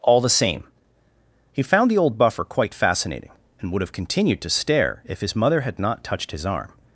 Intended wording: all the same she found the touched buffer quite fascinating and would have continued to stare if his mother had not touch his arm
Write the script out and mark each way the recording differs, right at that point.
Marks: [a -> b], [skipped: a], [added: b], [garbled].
all the same [she -> he] found the [touched -> old] buffer quite fascinating and would have continued to stare if his mother had not [touch -> touched] his arm